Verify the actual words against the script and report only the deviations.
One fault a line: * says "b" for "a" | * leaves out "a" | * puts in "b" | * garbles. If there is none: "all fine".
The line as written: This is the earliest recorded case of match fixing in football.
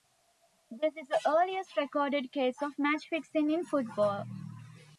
all fine